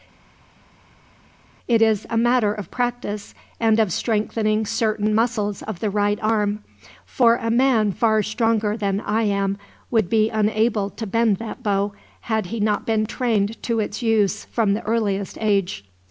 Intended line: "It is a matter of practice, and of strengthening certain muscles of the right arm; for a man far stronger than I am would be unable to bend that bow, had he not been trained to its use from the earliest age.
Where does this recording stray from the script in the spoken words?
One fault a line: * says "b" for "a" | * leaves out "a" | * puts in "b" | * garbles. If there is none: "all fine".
all fine